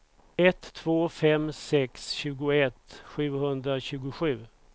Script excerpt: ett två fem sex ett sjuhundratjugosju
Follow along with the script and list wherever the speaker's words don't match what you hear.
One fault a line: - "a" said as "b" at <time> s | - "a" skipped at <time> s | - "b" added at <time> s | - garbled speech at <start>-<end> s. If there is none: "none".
- "ett" said as "tjugoett" at 2.1 s